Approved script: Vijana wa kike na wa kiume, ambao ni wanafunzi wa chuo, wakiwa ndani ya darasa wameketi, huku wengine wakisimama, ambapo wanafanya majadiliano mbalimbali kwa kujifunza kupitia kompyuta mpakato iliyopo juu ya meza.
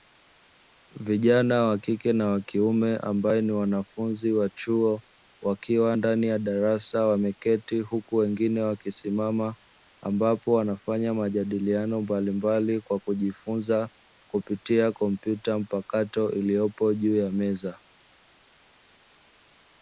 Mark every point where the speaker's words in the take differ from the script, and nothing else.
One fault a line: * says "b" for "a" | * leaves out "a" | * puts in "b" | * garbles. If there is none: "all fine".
all fine